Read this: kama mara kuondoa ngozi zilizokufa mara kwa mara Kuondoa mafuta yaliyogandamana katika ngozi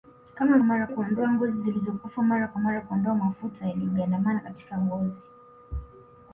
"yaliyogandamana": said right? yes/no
yes